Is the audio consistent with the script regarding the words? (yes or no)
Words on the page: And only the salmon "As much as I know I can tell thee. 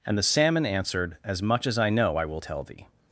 no